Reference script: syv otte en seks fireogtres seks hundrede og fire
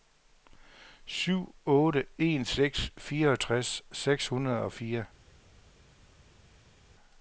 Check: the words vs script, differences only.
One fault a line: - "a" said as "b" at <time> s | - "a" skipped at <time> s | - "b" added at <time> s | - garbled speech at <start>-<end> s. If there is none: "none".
none